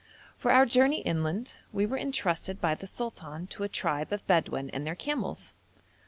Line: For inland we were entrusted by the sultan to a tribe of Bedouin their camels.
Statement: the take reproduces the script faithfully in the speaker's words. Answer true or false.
false